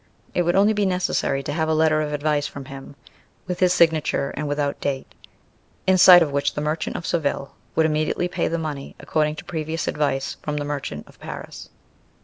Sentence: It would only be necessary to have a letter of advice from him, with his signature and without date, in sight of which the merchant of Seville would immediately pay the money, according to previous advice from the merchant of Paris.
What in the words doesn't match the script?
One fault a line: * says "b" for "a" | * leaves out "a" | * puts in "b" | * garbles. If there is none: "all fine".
all fine